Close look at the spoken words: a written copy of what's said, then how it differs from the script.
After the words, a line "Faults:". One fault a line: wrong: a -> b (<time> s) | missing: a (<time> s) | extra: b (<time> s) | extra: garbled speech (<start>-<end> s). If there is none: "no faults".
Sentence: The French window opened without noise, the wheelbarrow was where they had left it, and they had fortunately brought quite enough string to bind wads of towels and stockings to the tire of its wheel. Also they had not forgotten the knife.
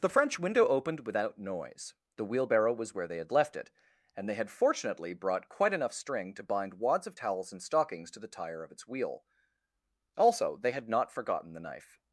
The French window opened without noise, the wheelbarrow was where they had left it, and they had fortunately brought quite enough string to bind wads of towels and stockings to the tire of its wheel. Also they had not forgotten the knife.
Faults:
no faults